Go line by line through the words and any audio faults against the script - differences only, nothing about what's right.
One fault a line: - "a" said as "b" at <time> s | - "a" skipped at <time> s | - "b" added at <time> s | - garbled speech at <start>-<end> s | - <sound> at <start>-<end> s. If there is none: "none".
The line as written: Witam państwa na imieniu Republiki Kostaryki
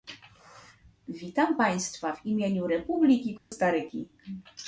- "na" said as "w" at 2.1 s
- dropout at 3.4-3.5 s